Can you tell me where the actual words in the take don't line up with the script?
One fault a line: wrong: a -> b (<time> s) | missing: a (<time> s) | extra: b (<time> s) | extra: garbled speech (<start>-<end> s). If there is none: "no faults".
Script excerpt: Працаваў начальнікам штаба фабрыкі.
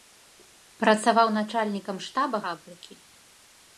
no faults